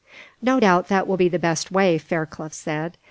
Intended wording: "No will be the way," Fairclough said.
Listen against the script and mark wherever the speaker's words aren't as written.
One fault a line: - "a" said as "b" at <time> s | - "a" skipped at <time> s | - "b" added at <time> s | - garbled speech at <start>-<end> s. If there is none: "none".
- "doubt that" added at 0.6 s
- "best" added at 1.4 s